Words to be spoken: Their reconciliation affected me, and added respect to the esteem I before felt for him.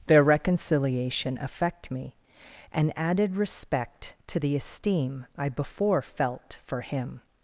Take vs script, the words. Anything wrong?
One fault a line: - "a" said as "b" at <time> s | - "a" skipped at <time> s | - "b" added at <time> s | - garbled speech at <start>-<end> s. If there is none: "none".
- "affected" said as "affect" at 1.4 s